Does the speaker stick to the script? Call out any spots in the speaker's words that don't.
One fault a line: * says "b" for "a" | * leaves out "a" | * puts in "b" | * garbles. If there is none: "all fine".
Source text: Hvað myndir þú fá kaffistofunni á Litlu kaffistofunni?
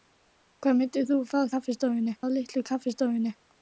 all fine